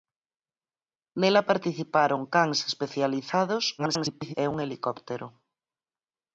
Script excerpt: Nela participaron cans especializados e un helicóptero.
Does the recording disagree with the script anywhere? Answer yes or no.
yes